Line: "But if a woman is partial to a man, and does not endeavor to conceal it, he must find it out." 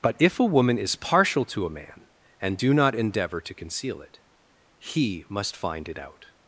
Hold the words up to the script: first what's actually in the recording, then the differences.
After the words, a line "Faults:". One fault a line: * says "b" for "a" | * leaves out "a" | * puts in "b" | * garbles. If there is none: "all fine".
"But if a woman is partial to a man, and do not endeavor to conceal it, he must find it out."
Faults:
* says "do" for "does"